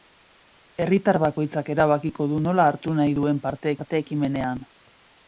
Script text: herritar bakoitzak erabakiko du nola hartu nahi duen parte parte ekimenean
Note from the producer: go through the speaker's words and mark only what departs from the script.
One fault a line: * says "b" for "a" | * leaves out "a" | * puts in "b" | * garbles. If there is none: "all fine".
all fine